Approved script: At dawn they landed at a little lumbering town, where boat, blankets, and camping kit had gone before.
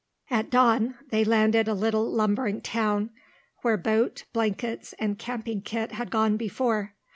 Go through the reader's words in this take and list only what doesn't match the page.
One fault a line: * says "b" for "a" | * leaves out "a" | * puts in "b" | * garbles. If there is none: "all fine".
* leaves out "at"